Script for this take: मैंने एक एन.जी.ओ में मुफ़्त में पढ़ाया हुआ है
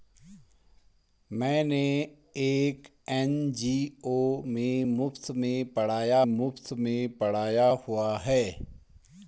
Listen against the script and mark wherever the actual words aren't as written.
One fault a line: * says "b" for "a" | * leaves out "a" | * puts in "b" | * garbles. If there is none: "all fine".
* puts in "मुफ़्त में पढ़ाया"